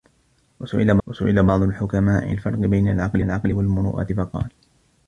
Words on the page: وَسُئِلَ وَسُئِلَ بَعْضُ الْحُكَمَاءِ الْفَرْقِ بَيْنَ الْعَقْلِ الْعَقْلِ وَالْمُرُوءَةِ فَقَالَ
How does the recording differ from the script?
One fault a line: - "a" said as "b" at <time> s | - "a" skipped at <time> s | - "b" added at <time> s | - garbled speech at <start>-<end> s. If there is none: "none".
none